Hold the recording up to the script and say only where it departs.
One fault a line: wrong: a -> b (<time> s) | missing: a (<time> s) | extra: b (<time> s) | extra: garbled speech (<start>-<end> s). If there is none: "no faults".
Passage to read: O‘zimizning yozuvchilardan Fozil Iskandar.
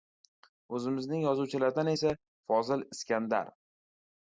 extra: esa (1.9 s)